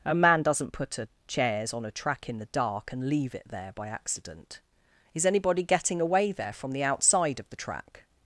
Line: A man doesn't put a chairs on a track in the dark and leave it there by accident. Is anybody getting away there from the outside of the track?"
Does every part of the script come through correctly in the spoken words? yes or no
yes